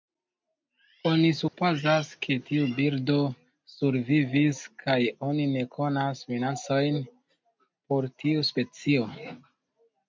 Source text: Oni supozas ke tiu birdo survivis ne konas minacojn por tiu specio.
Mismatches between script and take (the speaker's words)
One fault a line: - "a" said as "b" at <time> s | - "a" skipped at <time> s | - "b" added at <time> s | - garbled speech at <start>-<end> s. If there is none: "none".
- "kaj oni" added at 4.8 s